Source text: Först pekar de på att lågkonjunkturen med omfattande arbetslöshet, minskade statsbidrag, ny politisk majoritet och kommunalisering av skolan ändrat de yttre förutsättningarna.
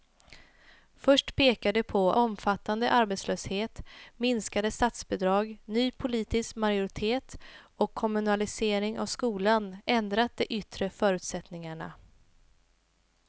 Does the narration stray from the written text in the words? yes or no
yes